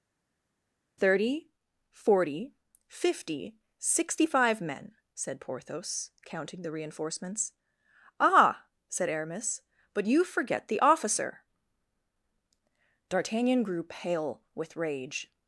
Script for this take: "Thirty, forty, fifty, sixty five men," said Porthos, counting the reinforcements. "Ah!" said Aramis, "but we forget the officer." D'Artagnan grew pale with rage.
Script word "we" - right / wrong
wrong